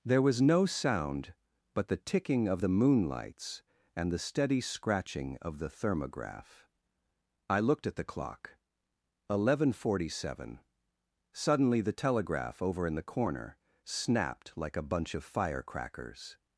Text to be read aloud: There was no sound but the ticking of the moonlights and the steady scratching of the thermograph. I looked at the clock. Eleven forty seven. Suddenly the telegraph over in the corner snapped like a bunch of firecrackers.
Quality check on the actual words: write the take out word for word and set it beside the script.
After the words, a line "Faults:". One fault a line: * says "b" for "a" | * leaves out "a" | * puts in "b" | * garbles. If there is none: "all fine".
There was no sound but the ticking of the moonlights and the steady scratching of the thermograph. I looked at the clock. Eleven forty seven. Suddenly the telegraph over in the corner snapped like a bunch of firecrackers.
Faults:
all fine